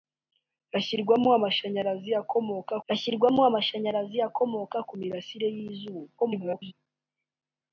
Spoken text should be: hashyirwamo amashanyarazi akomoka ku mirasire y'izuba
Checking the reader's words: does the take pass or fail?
fail